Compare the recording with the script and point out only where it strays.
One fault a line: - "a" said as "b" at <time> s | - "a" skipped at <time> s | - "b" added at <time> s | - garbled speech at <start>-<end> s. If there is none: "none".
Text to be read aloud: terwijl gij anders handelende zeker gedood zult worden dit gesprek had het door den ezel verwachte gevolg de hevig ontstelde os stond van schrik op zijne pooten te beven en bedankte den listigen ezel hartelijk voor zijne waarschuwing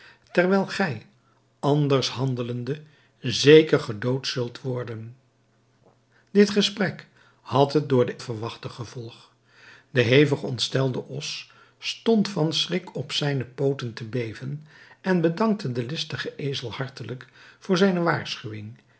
- "ezel" skipped at 8.2 s